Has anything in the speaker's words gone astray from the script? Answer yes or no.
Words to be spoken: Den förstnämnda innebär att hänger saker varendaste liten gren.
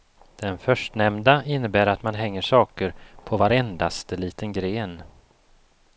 yes